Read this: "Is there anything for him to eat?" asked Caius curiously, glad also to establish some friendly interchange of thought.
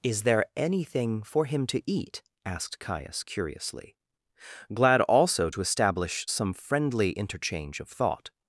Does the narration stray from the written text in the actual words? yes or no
no